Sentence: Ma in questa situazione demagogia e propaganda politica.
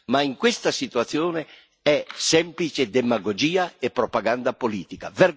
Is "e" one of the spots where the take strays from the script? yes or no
no